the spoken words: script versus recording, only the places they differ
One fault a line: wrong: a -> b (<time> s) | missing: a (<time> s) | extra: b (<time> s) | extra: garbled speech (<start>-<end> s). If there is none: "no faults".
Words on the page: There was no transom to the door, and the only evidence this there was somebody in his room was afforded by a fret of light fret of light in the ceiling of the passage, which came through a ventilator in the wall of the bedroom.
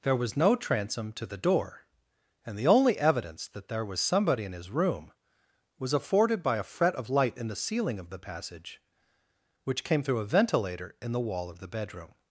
wrong: this -> that (3.5 s)
missing: fret of light (7.4 s)